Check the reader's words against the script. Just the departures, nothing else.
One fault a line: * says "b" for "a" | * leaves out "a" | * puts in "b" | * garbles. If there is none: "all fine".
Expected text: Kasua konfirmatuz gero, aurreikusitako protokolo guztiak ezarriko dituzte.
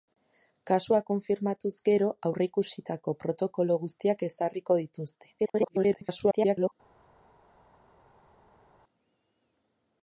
* garbles